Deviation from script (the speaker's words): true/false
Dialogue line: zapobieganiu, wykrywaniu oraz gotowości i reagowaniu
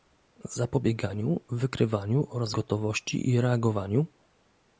false